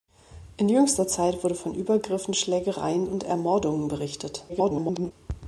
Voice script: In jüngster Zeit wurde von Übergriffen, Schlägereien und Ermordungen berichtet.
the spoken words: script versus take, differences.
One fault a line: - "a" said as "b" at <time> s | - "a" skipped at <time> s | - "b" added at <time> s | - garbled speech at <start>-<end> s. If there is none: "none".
- garbled speech at 4.5-5.1 s